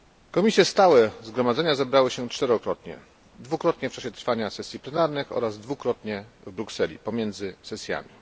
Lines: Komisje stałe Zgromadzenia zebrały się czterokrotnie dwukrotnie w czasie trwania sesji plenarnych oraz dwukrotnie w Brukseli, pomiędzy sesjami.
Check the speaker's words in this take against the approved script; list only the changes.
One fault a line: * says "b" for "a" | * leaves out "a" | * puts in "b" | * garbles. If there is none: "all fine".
all fine